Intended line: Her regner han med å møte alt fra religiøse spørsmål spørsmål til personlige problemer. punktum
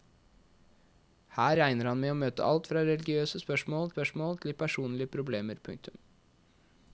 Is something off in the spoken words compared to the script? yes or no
no